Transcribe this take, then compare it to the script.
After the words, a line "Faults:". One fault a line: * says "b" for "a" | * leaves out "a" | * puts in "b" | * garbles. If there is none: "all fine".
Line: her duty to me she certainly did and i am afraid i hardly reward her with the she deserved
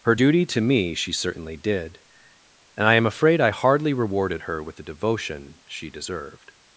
her duty to me she certainly did and i am afraid i hardly rewarded her with the devotion she deserved
Faults:
* says "rewarded" for "reward"
* puts in "devotion"